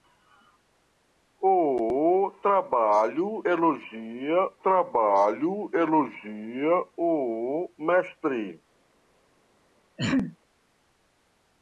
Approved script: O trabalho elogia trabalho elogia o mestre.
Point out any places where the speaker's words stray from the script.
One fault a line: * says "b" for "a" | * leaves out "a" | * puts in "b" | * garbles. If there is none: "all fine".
all fine